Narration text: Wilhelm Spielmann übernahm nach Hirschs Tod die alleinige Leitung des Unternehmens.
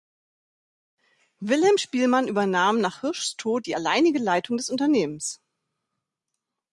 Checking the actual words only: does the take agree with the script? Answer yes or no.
yes